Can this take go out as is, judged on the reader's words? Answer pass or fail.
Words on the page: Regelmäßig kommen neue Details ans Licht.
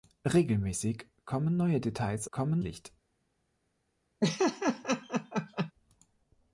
fail